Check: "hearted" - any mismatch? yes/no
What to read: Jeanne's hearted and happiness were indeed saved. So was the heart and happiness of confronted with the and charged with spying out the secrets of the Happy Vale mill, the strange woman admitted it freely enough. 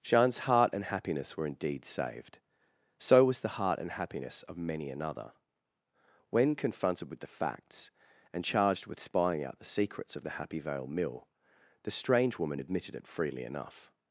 yes